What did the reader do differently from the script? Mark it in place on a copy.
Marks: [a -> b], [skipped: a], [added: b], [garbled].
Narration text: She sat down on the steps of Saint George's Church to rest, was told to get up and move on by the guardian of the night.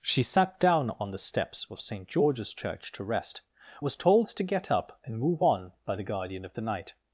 She sat down on the steps of Saint George's Church to rest, was told to get up and move on by the guardian of the night.